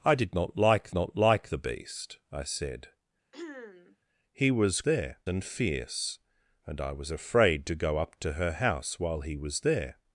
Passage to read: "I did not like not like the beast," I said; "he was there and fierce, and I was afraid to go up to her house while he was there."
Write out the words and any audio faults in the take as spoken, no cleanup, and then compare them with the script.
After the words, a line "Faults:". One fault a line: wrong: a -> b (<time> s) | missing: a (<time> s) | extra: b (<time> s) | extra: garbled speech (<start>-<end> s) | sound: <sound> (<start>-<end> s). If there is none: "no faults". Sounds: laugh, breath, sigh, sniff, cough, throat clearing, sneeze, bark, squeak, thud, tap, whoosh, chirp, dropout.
"I did not like not like the beast," I said; "he was there and fierce, and I was afraid to go up to her house while he was there."
Faults:
sound: throat clearing (3.3-4.0 s)